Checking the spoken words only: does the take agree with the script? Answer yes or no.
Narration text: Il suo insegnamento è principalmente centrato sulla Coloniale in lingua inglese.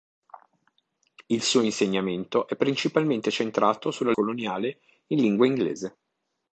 yes